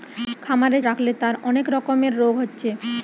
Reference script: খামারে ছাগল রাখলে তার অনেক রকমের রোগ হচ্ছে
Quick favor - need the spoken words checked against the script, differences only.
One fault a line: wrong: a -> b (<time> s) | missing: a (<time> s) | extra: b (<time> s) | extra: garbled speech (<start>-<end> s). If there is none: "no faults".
missing: ছাগল (0.8 s)